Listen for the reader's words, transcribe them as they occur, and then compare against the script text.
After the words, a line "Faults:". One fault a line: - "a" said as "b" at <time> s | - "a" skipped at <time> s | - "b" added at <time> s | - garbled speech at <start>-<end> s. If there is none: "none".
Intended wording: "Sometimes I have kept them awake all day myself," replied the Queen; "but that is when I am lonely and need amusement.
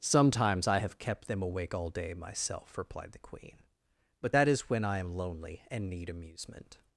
"Sometimes I have kept them awake all day myself," replied the Queen; "but that is when I am lonely and need amusement.
Faults:
none